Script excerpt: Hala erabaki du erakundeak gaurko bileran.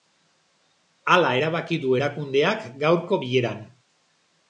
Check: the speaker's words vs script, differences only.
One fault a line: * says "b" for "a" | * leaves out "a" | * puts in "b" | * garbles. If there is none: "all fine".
all fine